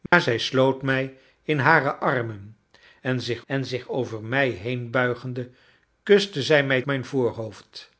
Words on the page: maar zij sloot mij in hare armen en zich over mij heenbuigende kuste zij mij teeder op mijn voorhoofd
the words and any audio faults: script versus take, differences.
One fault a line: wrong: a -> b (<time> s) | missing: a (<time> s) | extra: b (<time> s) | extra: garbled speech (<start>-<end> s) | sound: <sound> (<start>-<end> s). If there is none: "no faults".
sound: dropout (0.1-0.1 s)
extra: en zich (3.5 s)
missing: teeder op (6.8 s)